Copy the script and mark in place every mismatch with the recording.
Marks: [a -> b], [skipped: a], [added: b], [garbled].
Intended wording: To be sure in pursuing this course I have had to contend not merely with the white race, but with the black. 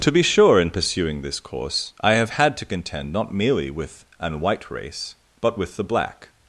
To be sure in pursuing this course I have had to contend not merely with [the -> an] white race, but with the black.